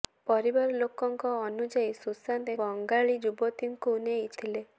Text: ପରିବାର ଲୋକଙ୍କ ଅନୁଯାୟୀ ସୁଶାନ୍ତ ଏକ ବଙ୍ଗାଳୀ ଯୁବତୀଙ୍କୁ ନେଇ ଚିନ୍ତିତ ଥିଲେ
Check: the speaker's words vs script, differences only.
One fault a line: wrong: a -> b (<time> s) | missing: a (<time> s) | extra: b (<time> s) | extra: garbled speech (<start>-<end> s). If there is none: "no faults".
missing: ଏକ (2.6 s)
missing: ଚିନ୍ତିତ (4.3 s)